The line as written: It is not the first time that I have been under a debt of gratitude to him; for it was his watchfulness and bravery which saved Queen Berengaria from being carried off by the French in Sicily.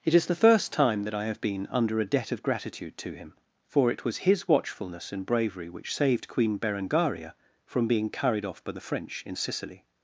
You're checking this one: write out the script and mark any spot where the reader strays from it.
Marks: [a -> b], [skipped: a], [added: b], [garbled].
It is [skipped: not] the first time that I have been under a debt of gratitude to him; for it was his watchfulness and bravery which saved Queen Berengaria from being carried off by the French in Sicily.